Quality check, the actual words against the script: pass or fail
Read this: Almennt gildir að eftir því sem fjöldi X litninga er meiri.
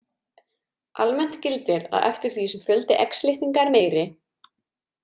pass